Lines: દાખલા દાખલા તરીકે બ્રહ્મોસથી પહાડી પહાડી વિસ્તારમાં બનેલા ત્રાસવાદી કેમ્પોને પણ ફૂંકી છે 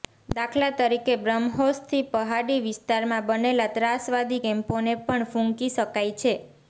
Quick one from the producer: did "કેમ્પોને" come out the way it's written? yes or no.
yes